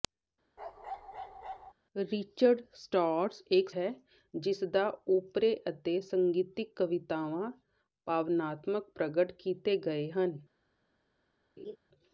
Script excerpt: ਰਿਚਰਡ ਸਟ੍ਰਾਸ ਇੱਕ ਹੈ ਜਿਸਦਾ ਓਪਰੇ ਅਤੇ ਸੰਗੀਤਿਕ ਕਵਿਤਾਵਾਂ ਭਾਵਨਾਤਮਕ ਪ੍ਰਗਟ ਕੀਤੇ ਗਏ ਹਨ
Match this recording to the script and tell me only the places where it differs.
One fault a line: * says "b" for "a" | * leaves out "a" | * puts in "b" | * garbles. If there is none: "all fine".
all fine